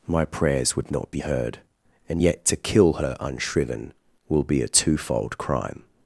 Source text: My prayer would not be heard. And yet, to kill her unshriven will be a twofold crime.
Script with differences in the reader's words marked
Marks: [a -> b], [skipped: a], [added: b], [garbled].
My [prayer -> prayers] would not be heard. And yet, to kill her unshriven will be a twofold crime.